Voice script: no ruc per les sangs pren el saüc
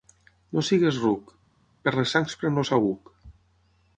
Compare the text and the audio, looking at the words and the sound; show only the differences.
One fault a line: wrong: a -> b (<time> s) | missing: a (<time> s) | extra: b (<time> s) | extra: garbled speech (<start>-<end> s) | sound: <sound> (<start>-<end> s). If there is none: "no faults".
extra: siguis (0.7 s)